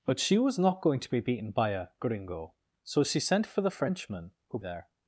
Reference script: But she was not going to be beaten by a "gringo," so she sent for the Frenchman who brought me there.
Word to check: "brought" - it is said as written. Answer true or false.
false